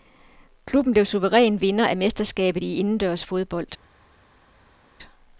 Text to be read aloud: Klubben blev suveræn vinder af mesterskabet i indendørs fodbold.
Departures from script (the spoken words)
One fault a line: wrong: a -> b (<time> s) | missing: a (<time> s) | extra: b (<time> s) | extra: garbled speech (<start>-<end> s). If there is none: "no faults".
no faults